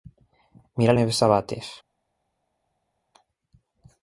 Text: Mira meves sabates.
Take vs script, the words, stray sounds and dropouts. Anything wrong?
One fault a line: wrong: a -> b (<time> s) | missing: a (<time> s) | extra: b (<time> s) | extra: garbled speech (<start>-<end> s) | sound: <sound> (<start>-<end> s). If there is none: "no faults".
no faults